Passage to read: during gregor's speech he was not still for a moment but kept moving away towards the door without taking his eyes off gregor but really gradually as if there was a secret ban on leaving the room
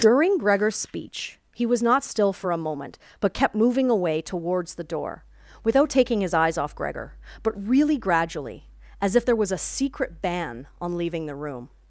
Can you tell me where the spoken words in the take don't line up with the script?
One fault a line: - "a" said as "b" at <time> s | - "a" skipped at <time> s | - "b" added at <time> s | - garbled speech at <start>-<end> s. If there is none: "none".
none